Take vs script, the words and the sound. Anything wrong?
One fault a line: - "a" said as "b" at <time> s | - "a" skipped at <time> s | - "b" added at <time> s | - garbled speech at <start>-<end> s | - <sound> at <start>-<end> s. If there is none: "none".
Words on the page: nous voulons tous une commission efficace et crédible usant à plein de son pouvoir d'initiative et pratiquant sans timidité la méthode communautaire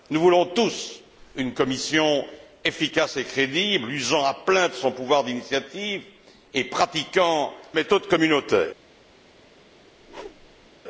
- "sans timidité la" skipped at 7.5 s
- whoosh at 10.0-10.7 s